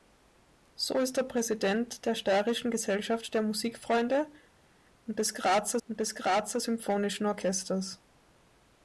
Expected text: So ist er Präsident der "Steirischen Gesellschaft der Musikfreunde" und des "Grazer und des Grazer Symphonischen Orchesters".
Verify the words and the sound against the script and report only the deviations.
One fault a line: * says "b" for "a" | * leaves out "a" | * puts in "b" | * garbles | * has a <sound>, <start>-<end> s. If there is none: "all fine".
all fine